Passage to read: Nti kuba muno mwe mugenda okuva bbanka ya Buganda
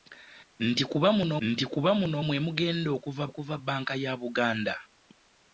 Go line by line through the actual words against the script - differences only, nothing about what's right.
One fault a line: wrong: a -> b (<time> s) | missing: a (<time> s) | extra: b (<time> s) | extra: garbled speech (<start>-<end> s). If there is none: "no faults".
extra: nti kuba muno (1.5 s)
extra: okuva (3.3 s)